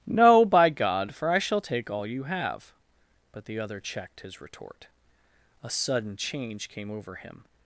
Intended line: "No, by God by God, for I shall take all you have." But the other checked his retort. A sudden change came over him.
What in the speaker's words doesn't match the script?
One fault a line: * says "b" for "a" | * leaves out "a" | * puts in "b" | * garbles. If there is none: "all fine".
* leaves out "by God"